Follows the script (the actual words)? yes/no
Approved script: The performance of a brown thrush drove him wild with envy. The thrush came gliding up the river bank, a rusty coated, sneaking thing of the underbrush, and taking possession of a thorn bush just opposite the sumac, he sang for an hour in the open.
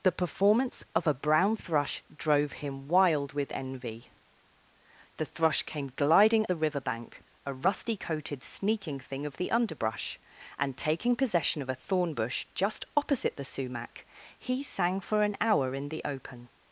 no